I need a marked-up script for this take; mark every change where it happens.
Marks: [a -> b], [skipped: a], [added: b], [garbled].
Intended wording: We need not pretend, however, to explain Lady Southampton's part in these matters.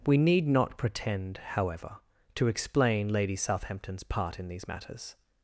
We need not pretend, however, to explain Lady Southampton's part in these matters.